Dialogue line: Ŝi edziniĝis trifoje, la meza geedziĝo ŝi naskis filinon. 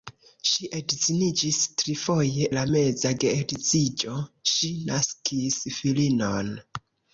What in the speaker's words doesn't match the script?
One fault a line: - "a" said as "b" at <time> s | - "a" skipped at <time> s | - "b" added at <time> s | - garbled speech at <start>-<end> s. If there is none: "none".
none